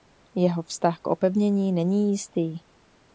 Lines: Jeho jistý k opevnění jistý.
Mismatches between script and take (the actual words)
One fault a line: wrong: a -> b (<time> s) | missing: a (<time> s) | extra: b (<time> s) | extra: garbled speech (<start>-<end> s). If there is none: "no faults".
wrong: jistý -> vztah (0.6 s)
extra: není (1.7 s)